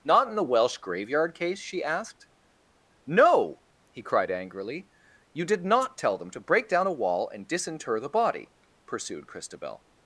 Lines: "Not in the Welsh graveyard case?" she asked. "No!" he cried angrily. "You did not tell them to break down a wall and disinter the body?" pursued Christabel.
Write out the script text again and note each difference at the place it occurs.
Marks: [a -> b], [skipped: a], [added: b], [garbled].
"Not in the Welsh graveyard case?" she asked. "No!" he cried angrily. "You did not tell them to break down a wall and disinter the body?" pursued Christabel.